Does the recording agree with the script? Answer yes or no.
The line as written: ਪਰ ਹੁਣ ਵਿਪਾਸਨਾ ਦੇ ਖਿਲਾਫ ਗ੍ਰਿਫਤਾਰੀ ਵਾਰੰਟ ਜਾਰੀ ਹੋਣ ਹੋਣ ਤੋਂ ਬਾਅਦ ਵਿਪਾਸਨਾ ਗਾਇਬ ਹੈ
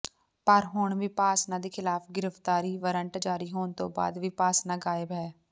no